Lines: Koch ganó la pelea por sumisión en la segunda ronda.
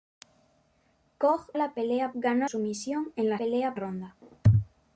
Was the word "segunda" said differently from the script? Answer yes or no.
yes